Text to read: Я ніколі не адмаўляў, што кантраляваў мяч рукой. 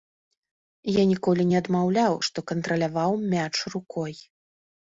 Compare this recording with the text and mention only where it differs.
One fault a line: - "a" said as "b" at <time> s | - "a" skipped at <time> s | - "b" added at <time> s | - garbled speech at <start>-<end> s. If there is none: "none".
none